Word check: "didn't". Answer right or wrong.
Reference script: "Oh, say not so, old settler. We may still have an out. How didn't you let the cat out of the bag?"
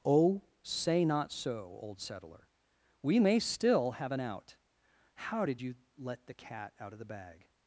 wrong